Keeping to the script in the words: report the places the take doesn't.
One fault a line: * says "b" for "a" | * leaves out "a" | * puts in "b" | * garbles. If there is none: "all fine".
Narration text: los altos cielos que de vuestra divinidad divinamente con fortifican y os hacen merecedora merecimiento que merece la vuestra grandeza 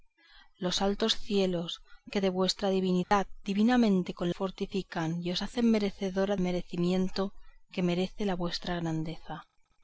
all fine